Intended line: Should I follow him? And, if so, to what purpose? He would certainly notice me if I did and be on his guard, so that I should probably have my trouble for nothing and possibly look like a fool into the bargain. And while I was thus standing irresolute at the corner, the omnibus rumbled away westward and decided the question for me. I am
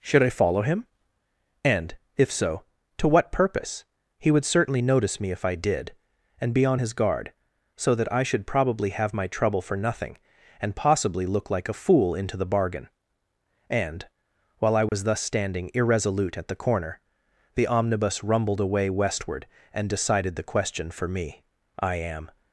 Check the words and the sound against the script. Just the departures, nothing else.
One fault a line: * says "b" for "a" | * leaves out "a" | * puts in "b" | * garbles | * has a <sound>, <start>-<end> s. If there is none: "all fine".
* has a dropout, 14.9-14.9 s